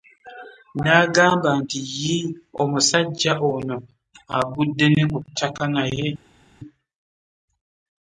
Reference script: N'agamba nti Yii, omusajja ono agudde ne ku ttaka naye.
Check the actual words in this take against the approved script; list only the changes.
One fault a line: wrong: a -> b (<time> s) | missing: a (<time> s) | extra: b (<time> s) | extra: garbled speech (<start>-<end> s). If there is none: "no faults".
no faults